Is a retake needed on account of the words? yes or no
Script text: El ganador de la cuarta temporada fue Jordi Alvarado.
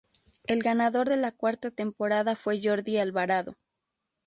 no